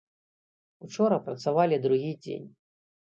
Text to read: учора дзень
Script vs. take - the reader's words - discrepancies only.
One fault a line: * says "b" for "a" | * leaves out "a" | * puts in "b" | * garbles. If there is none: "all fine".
* puts in "працавалі другі"